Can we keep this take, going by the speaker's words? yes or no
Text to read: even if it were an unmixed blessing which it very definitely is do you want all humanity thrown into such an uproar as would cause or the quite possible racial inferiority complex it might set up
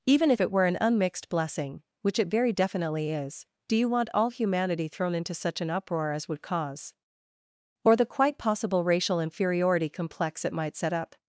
yes